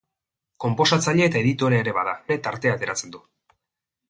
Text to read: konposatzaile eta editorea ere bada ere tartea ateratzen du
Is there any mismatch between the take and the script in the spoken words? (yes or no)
no